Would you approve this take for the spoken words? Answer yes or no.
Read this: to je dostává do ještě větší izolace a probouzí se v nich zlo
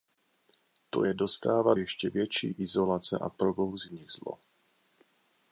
no